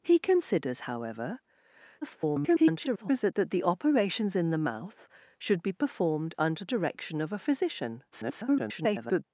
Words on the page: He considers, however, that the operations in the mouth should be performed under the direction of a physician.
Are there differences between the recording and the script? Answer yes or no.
yes